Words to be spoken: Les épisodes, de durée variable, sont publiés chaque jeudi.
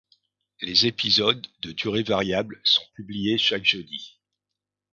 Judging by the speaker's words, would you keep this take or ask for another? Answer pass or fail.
pass